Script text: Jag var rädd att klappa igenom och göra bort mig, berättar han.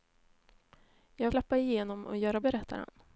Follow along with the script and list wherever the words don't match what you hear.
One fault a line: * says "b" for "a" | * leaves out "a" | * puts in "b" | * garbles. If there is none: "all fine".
* leaves out "var rädd att"
* leaves out "bort mig"